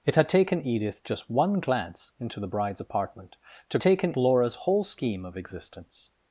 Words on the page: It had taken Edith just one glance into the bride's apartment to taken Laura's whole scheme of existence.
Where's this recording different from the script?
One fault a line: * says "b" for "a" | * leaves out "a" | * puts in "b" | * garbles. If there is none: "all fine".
all fine